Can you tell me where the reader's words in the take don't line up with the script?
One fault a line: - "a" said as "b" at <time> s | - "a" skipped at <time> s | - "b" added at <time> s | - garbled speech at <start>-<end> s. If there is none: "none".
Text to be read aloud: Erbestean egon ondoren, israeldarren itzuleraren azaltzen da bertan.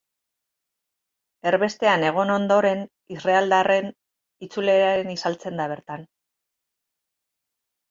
none